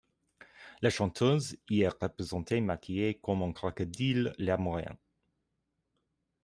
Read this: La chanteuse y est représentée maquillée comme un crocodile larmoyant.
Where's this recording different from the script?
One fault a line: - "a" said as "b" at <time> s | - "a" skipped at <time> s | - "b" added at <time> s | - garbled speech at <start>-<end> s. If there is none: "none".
none